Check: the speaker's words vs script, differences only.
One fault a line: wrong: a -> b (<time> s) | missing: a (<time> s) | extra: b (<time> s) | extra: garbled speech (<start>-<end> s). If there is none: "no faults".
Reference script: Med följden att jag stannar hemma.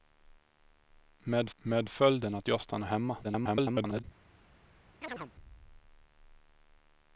extra: med (1.6 s)
extra: garbled speech (3.2-4.0 s)